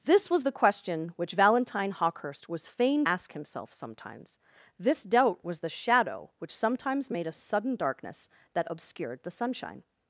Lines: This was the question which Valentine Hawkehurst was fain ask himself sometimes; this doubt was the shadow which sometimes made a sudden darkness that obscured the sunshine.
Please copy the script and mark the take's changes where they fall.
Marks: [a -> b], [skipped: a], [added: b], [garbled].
This was the question which Valentine Hawkehurst was fain ask himself sometimes; this doubt was the shadow which sometimes made a sudden darkness that obscured the sunshine.